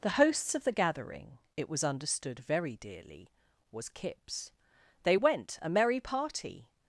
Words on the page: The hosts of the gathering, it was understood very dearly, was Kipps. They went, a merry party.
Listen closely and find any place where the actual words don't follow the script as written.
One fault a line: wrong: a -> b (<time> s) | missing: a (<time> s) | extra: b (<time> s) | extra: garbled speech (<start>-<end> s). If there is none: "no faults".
no faults